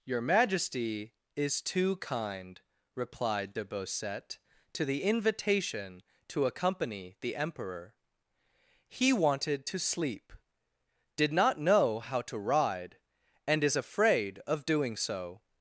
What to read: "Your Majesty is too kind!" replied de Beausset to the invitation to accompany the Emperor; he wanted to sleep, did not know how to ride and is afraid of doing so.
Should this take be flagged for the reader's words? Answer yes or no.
no